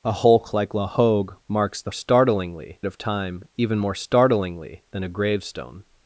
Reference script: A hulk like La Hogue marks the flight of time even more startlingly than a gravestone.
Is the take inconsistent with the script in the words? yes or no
yes